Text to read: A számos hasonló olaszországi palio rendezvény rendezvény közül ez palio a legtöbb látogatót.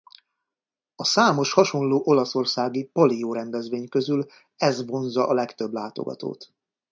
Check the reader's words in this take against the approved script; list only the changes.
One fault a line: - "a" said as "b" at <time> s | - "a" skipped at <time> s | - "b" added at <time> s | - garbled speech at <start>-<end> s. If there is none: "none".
- "rendezvény" skipped at 3.9 s
- "palio" said as "vonzza" at 4.9 s